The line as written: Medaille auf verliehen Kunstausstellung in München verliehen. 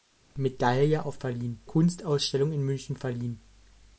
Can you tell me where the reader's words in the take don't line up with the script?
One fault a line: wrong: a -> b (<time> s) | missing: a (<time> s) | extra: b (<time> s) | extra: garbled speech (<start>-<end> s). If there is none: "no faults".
no faults